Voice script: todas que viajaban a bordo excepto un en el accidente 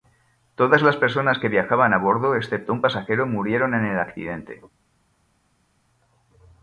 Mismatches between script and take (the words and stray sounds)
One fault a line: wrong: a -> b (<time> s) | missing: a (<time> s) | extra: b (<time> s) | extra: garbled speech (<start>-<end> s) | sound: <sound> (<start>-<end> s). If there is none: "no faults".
extra: las personas (0.8 s)
extra: pasajero murieron (2.8 s)